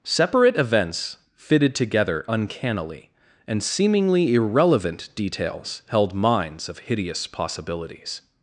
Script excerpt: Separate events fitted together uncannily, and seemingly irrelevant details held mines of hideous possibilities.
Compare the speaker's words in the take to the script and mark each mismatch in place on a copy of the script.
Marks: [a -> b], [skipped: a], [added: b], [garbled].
Separate events fitted together uncannily, and seemingly irrelevant details held mines of hideous possibilities.